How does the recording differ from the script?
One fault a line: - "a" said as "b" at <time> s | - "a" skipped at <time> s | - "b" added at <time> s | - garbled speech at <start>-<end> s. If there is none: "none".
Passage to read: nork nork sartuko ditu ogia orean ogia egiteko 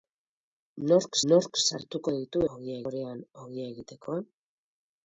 none